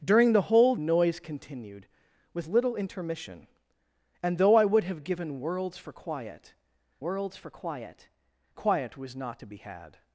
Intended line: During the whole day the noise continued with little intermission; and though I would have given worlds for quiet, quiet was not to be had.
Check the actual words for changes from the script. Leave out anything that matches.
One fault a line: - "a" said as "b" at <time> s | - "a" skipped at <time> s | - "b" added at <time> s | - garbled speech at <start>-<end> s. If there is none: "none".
- "day the" skipped at 0.8 s
- "worlds for quiet" added at 7.0 s